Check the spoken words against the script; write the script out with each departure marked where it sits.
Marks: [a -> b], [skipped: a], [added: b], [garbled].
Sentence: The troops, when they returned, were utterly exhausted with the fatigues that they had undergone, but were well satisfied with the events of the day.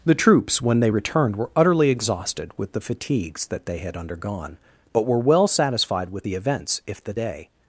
The troops, when they returned, were utterly exhausted with the fatigues that they had undergone, but were well satisfied with the events [of -> if] the day.